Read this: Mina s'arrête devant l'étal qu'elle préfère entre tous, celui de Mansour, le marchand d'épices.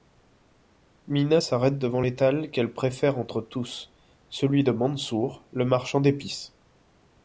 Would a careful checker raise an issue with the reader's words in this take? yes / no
no